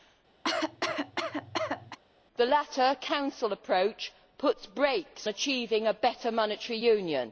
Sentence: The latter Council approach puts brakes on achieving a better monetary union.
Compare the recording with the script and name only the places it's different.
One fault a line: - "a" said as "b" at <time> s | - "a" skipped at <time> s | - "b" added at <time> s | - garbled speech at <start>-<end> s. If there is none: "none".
- "on" skipped at 5.3 s